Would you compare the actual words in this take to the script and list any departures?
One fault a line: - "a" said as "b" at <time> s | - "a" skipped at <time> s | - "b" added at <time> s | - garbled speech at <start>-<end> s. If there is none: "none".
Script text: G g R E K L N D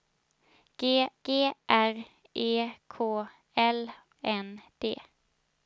none